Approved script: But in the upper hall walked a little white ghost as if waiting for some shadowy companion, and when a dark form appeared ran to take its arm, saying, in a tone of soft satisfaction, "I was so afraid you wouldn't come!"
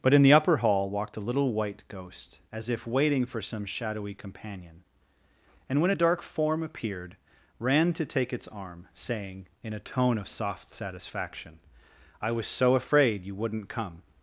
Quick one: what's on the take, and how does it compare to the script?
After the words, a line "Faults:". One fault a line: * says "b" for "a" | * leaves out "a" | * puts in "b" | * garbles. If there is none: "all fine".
But in the upper hall walked a little white ghost as if waiting for some shadowy companion, and when a dark form appeared ran to take its arm, saying, in a tone of soft satisfaction, "I was so afraid you wouldn't come!"
Faults:
all fine